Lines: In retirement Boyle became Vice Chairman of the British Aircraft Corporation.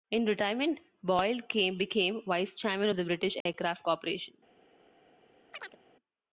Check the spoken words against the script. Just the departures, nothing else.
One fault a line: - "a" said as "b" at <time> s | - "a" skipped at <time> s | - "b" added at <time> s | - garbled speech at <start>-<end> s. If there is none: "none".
none